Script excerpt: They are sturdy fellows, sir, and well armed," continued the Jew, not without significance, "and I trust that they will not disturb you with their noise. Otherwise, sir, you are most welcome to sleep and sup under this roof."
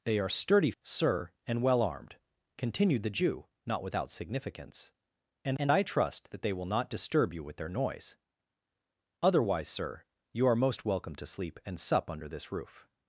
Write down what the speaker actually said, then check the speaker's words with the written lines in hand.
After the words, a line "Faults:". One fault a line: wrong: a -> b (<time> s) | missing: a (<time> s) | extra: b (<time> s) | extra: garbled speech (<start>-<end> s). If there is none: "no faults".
They are sturdy sir, and well armed," continued the Jew, not without significance, "and and I trust that they will not disturb you with their noise. Otherwise, sir, you are most welcome to sleep and sup under this roof."
Faults:
missing: fellows (0.7 s)
extra: and (5.6 s)